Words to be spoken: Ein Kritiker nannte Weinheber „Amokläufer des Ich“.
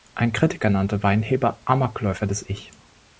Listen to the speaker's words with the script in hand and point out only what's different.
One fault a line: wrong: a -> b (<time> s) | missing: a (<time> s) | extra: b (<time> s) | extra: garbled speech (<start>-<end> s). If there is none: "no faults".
no faults